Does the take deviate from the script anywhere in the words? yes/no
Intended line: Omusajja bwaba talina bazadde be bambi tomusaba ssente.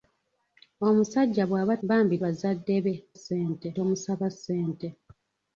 yes